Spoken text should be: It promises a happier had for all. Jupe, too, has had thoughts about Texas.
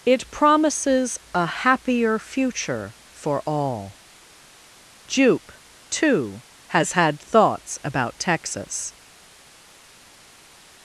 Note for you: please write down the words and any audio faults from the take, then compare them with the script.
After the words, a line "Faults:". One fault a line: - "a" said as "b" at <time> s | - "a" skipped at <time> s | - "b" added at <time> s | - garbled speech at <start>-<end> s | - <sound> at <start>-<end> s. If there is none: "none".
It promises a happier future for all. Jupe, too, has had thoughts about Texas.
Faults:
- "had" said as "future" at 2.2 s